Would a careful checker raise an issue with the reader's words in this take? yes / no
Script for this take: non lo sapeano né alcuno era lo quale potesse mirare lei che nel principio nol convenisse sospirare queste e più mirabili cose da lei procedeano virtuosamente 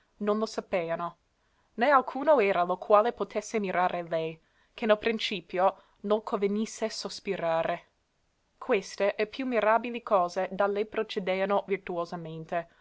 no